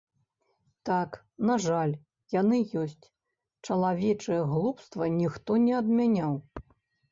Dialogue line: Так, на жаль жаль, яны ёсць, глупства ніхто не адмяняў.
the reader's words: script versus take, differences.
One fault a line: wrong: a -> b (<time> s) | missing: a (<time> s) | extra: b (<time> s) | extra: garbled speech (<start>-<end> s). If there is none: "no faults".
missing: жаль (1.9 s)
extra: чалавечае (3.7 s)